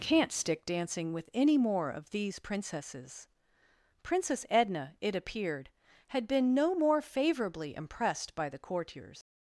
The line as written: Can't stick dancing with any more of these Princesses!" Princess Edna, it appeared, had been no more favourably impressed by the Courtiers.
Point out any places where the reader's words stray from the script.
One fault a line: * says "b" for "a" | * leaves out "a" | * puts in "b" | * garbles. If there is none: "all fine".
all fine